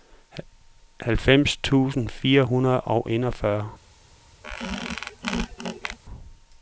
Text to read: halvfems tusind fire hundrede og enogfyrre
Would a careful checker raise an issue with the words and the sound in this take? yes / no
yes